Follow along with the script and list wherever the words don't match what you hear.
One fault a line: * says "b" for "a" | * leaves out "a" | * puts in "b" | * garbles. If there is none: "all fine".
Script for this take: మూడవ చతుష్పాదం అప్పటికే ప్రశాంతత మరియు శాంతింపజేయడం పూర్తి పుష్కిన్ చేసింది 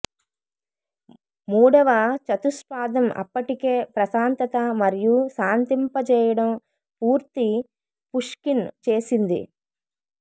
all fine